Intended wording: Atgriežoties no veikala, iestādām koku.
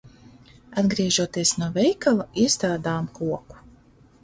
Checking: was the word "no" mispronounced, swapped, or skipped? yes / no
no